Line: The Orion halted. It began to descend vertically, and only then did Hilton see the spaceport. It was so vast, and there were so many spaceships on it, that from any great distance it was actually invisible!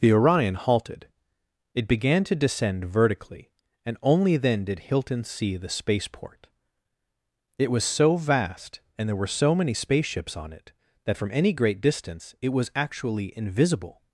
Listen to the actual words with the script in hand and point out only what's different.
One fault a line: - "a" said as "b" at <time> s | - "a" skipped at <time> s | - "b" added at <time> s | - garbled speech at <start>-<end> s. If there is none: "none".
none